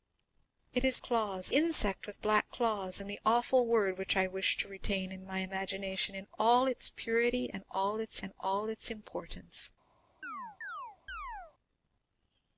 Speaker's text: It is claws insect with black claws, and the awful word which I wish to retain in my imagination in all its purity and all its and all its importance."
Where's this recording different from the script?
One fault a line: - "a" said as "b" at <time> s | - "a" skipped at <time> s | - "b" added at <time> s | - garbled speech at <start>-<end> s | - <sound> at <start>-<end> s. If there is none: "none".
- chirp at 10.2-11.5 s